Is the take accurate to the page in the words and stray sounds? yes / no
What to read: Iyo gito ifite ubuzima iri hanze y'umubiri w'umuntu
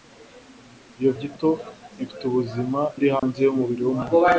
no